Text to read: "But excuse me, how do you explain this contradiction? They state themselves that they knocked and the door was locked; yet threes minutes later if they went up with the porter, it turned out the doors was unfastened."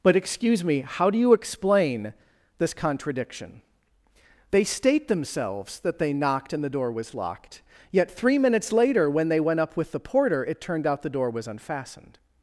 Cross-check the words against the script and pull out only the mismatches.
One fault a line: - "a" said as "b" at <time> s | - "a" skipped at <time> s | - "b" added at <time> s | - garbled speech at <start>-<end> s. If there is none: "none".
- "threes" said as "three" at 8.1 s
- "if" said as "when" at 9.1 s
- "doors" said as "door" at 11.1 s